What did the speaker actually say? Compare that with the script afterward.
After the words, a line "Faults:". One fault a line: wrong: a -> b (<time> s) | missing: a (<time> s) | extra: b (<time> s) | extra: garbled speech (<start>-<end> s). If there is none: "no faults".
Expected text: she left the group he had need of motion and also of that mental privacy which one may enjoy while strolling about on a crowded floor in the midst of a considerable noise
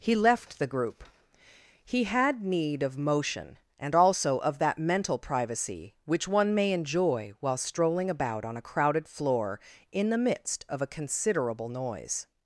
he left the group he had need of motion and also of that mental privacy which one may enjoy while strolling about on a crowded floor in the midst of a considerable noise
Faults:
wrong: she -> he (0.0 s)